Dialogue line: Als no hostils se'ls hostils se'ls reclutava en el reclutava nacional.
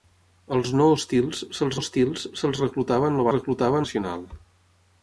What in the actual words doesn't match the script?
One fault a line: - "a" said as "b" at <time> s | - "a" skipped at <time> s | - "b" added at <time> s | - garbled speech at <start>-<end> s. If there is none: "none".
none